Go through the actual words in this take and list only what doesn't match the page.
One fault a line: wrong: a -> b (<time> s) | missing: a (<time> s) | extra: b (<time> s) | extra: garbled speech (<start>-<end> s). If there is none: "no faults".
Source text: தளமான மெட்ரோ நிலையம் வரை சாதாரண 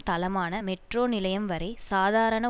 no faults